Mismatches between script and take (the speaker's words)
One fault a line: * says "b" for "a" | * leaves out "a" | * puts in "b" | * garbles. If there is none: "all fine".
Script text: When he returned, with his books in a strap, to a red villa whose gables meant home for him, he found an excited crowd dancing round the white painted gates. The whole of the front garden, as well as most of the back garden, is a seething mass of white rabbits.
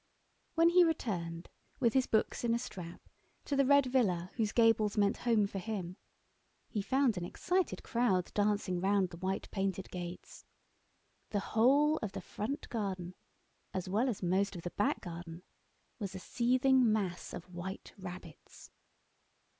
* says "the" for "a"
* says "was" for "is"